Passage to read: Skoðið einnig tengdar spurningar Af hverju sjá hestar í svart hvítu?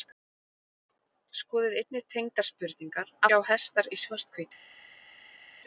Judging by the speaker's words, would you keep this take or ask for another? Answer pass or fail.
fail